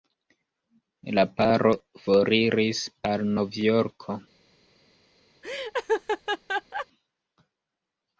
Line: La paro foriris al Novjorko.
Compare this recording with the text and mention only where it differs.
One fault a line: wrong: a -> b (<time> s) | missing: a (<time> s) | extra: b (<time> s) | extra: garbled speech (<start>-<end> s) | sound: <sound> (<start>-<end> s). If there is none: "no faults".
sound: laugh (5.4-6.9 s)